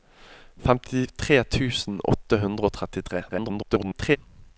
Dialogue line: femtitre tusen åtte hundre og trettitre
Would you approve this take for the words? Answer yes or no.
no